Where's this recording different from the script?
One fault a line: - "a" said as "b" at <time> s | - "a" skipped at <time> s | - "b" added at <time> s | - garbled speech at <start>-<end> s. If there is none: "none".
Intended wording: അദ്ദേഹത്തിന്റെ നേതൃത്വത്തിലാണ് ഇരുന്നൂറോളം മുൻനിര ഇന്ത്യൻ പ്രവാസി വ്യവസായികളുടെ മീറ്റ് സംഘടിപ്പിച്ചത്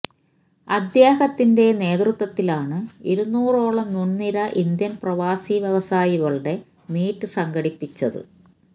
none